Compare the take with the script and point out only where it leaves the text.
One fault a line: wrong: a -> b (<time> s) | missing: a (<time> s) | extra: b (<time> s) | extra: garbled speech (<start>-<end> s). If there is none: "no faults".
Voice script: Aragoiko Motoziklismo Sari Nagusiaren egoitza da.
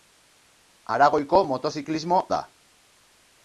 missing: Sari Nagusiaren egoitza (2.2 s)